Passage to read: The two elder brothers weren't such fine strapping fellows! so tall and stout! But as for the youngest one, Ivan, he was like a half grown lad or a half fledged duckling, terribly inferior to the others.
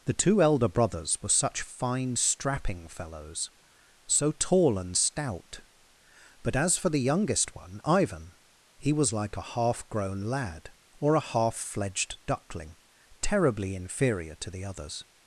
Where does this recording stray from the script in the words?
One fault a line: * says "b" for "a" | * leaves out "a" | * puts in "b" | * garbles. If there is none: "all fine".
* says "were" for "weren't"